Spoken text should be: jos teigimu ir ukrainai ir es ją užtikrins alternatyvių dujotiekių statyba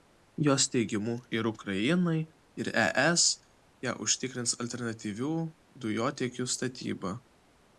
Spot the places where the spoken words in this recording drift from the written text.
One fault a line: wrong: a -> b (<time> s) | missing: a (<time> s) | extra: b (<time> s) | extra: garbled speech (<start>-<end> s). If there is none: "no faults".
no faults